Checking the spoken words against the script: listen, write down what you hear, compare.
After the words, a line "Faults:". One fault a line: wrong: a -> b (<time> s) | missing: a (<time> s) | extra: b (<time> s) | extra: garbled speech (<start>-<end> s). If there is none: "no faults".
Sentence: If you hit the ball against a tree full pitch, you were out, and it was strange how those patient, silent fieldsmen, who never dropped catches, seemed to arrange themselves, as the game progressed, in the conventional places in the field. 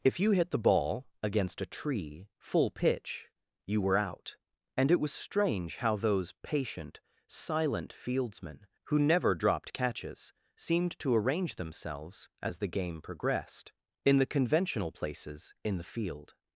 If you hit the ball against a tree full pitch, you were out, and it was strange how those patient, silent fieldsmen, who never dropped catches, seemed to arrange themselves, as the game progressed, in the conventional places in the field.
Faults:
no faults